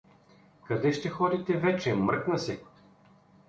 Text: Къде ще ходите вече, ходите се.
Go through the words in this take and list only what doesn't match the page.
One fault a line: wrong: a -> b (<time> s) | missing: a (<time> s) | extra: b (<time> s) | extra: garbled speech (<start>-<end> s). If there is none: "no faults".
wrong: ходите -> мръкна (1.9 s)